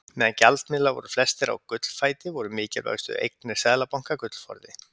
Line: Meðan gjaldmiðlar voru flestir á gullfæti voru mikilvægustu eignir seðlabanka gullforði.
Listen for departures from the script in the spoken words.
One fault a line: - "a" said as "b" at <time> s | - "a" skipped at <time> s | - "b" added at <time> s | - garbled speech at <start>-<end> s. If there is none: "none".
none